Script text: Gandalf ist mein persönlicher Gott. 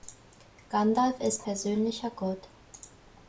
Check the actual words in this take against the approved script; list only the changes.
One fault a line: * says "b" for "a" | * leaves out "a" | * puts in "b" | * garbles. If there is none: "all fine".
* leaves out "mein"